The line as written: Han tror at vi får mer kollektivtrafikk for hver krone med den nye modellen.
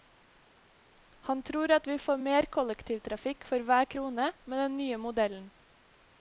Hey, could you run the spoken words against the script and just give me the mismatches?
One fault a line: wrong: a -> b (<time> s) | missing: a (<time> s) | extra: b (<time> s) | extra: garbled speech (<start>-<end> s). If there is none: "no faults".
no faults